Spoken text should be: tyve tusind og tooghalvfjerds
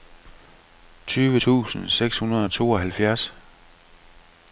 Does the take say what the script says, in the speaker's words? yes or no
no